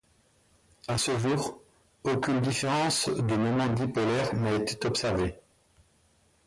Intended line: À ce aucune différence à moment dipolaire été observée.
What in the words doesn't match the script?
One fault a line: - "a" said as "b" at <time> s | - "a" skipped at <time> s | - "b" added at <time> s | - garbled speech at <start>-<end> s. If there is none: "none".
- "jour" added at 1.2 s
- "à" said as "de" at 3.1 s
- "n'a" added at 4.3 s